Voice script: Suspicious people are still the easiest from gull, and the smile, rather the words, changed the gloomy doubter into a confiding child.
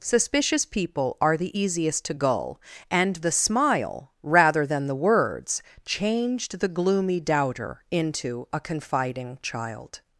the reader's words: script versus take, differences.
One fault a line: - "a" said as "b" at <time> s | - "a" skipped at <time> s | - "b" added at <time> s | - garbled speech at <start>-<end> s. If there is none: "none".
- "still" skipped at 1.4 s
- "from" said as "to" at 2.0 s
- "than" added at 4.7 s